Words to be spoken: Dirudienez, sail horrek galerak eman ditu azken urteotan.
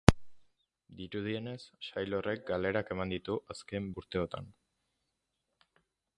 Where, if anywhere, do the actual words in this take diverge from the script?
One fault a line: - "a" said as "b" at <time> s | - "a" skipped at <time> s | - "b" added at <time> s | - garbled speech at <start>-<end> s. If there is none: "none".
none